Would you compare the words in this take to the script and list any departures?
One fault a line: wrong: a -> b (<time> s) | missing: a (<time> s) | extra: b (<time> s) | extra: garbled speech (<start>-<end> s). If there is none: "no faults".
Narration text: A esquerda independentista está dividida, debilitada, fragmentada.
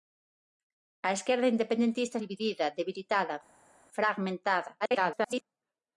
missing: está (2.2 s)
extra: garbled speech (4.8-5.4 s)